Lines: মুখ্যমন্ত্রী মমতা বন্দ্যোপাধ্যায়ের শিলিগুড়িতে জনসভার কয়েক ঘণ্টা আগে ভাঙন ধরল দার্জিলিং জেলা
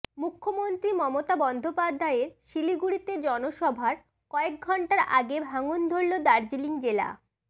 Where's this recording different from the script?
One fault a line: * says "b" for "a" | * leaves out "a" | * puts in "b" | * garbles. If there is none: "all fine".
all fine